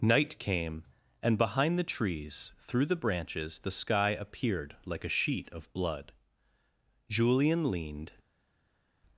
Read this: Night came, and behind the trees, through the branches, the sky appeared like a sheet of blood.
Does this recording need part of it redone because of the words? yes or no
yes